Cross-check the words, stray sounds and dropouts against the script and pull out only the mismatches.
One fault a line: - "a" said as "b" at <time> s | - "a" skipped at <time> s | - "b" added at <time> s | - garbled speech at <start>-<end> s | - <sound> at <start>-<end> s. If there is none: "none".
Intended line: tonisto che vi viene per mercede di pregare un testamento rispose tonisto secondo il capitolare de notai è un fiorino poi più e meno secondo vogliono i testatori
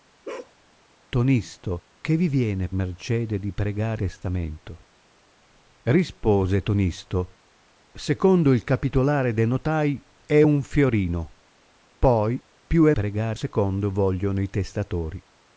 - bark at 0.2-0.5 s
- "per" skipped at 2.7 s
- "un" skipped at 4.0 s
- "meno" said as "pregare" at 12.9 s